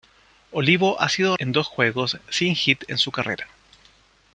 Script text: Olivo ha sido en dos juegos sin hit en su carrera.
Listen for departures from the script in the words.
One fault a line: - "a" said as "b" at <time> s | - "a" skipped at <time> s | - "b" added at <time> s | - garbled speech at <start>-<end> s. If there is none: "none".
none